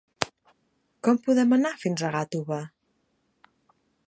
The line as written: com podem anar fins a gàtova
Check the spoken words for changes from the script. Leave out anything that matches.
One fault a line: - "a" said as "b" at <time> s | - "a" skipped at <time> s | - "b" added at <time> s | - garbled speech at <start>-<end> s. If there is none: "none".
none